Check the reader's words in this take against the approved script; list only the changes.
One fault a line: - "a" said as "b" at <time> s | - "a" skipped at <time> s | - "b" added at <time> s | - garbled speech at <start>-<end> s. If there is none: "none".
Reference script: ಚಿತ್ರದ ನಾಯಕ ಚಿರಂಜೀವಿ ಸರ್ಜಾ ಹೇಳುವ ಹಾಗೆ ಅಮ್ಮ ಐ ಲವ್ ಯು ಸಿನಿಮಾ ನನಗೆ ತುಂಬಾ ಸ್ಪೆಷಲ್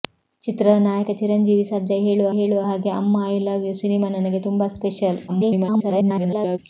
- "ಹೇಳುವ" added at 2.3 s
- garbled speech at 5.3-6.6 s